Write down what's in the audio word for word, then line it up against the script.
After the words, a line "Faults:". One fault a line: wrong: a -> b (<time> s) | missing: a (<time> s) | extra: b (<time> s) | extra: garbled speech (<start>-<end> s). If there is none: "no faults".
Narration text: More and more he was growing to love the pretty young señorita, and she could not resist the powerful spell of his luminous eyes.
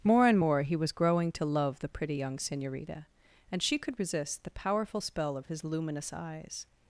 More and more he was growing to love the pretty young señorita, and she could resist the powerful spell of his luminous eyes.
Faults:
missing: not (4.0 s)